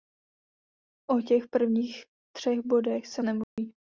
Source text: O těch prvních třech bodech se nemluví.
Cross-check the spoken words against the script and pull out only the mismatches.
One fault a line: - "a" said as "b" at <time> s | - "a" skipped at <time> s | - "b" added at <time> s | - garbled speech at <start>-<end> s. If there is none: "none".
none